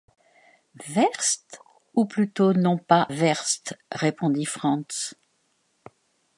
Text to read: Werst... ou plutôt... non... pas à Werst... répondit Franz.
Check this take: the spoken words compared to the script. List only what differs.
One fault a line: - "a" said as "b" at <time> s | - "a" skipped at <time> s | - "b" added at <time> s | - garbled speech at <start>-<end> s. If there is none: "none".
- "à" skipped at 3.0 s